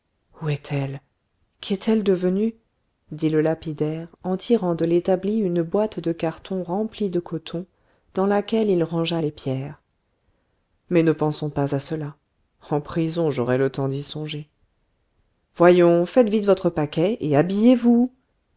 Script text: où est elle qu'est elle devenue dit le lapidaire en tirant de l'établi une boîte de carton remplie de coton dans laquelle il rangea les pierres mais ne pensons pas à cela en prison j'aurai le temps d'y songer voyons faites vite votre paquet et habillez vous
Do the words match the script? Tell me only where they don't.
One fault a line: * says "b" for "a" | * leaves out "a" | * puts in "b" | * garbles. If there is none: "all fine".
all fine